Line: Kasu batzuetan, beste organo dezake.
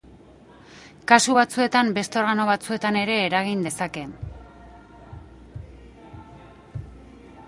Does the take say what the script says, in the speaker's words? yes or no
no